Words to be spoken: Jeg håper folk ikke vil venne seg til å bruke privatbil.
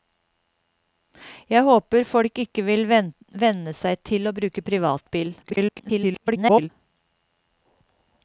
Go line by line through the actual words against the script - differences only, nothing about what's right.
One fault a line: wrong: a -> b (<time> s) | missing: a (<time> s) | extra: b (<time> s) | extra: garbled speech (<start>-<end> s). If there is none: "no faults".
extra: garbled speech (5.4-6.7 s)